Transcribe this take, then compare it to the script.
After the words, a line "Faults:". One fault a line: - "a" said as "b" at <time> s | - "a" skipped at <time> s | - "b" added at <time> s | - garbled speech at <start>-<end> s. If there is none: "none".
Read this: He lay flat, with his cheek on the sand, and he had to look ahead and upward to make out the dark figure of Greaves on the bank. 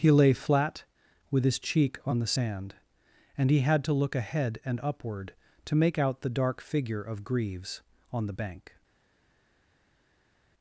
He lay flat, with his cheek on the sand, and he had to look ahead and upward to make out the dark figure of Greaves on the bank.
Faults:
none